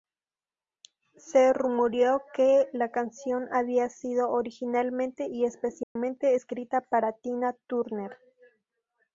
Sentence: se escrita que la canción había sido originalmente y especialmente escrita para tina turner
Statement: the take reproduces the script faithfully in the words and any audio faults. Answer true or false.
false